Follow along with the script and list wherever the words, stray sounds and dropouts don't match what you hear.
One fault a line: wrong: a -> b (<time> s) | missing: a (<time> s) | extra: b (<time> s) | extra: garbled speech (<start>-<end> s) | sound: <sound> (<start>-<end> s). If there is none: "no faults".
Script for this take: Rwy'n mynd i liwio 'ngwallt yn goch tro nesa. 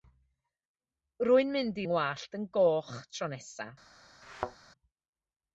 missing: liwio (1.9 s)
sound: thud (4.2-4.6 s)